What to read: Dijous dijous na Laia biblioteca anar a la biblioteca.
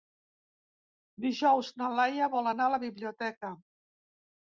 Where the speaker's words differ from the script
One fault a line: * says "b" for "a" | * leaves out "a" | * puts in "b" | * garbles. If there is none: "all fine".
* leaves out "dijous"
* says "vol" for "biblioteca"